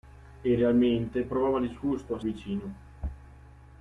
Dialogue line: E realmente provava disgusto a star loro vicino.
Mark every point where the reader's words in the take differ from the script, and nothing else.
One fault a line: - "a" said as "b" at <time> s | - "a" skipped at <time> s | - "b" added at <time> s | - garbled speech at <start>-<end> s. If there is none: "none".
- "star loro" skipped at 2.2 s